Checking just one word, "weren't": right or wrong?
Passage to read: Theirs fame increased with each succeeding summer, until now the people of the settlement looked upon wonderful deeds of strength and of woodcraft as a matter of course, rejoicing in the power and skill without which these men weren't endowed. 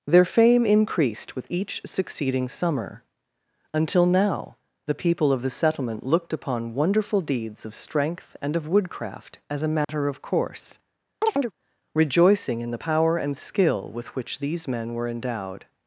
wrong